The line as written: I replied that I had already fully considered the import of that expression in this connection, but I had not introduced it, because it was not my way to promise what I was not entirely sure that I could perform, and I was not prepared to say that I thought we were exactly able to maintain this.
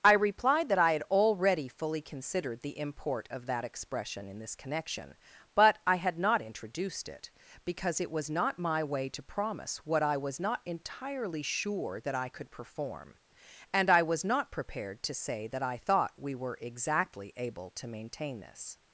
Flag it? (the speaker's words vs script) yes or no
no